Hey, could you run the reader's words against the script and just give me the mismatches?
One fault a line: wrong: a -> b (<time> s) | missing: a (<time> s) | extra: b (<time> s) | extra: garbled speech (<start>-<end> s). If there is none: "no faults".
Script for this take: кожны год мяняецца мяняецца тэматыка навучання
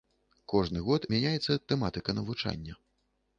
missing: мяняецца (1.6 s)